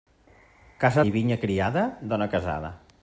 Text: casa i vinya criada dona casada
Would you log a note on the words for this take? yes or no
no